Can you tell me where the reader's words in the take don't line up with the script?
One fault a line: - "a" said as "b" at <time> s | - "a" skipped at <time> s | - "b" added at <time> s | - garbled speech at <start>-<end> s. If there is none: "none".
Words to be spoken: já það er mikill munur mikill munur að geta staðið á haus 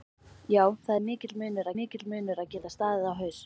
none